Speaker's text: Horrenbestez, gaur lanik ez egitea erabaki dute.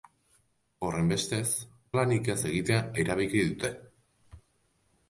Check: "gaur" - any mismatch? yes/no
yes